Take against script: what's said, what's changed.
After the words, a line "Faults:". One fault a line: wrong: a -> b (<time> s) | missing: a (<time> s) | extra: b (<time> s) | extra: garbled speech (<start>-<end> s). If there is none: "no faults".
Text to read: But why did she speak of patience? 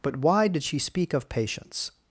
But why did she speak of patience?
Faults:
no faults